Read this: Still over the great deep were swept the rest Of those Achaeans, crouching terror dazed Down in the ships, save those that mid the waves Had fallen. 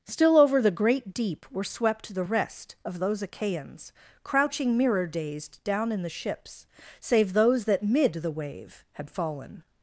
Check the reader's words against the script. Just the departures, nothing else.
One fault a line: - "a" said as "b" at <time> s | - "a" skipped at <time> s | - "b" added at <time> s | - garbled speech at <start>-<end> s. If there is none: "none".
- "terror" said as "mirror" at 4.8 s
- "waves" said as "wave" at 8.3 s